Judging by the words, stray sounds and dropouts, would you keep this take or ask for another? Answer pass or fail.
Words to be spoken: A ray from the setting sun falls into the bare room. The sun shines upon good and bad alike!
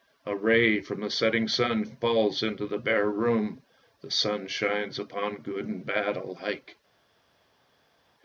pass